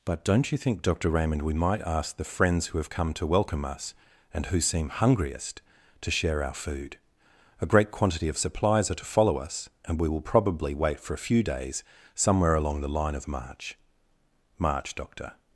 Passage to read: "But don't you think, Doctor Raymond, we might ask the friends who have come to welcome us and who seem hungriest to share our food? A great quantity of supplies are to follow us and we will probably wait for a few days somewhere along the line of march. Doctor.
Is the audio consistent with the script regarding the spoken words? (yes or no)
no